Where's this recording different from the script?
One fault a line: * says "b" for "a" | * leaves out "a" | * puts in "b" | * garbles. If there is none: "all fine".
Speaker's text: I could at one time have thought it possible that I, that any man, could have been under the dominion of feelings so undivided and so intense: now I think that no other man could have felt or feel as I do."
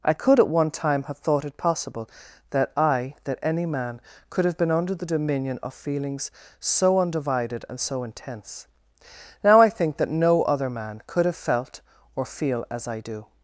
all fine